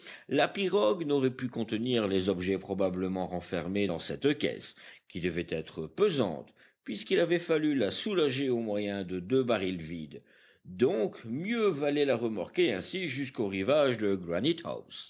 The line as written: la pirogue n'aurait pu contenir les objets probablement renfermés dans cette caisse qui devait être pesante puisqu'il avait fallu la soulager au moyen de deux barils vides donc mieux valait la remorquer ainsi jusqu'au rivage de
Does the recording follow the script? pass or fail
pass